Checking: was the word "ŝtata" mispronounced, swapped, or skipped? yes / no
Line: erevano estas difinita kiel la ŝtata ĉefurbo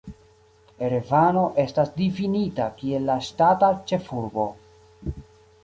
no